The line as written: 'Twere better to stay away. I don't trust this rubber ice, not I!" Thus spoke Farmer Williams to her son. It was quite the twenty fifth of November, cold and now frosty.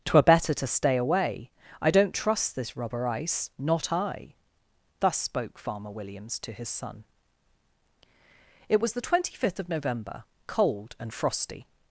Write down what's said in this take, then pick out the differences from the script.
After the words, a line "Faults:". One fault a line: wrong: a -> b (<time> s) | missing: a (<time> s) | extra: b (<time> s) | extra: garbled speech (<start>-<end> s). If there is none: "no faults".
'Twere better to stay away. I don't trust this rubber ice, not I!" Thus spoke Farmer Williams to his son. It was the twenty fifth of November, cold and frosty.
Faults:
wrong: her -> his (6.5 s)
missing: quite (8.9 s)
missing: now (11.1 s)